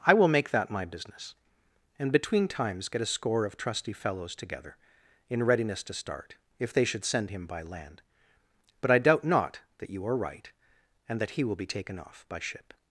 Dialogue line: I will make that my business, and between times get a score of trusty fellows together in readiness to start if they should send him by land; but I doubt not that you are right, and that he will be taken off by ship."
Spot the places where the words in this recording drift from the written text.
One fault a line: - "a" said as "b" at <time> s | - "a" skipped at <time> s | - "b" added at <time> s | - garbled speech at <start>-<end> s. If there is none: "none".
none